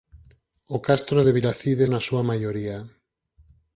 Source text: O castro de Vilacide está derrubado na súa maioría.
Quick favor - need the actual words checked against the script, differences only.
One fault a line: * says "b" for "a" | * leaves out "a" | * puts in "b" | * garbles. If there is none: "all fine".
* leaves out "está derrubado"